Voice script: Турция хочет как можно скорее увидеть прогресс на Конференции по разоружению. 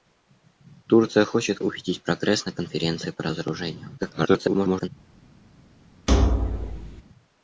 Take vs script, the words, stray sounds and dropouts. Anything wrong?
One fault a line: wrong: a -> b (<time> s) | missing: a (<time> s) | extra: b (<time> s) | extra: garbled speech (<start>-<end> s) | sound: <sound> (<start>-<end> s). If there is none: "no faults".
missing: как можно скорее (1.6 s)
extra: garbled speech (4.0-4.9 s)
sound: thud (6.1-7.0 s)